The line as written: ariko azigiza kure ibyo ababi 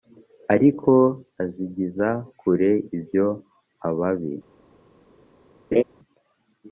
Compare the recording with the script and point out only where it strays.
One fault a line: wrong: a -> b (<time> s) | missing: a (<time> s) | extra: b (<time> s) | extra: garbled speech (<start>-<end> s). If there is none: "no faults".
no faults